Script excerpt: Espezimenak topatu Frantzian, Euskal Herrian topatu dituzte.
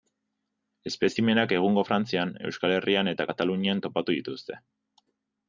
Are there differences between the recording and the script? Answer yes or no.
yes